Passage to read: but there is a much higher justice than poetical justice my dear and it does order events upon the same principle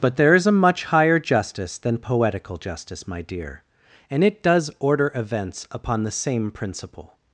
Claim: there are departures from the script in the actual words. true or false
false